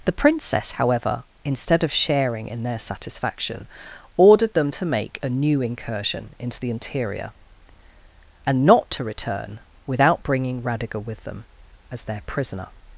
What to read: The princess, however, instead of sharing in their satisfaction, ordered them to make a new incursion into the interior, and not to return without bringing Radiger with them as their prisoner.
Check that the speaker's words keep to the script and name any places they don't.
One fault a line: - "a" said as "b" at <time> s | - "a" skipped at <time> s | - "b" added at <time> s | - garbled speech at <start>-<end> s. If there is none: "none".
none